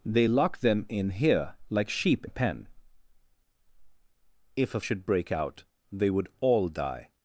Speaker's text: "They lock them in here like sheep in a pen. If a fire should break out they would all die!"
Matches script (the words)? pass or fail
fail